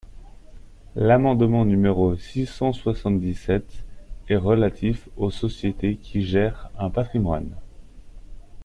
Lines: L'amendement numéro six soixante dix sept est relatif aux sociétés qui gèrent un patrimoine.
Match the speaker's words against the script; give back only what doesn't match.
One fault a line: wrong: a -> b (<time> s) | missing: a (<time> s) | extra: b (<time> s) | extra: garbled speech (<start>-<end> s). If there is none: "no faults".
extra: cent (2.5 s)